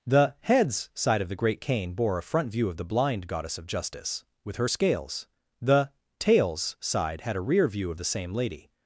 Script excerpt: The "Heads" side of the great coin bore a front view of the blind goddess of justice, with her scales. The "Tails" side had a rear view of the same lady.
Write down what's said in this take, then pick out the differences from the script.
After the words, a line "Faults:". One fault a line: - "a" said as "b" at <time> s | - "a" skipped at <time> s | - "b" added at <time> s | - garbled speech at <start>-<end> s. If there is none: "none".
The "Heads" side of the great cane bore a front view of the blind goddess of justice, with her scales. The "Tails" side had a rear view of the same lady.
Faults:
- "coin" said as "cane" at 1.6 s